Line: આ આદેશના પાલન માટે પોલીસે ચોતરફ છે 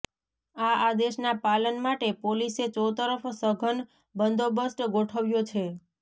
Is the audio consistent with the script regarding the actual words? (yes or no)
no